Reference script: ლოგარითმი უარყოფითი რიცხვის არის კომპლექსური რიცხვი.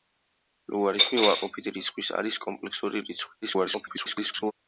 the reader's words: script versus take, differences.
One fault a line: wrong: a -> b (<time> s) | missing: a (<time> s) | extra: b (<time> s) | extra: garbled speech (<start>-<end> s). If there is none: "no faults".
extra: garbled speech (3.4-4.5 s)